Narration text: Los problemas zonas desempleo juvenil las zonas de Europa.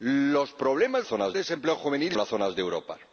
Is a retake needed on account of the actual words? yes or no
no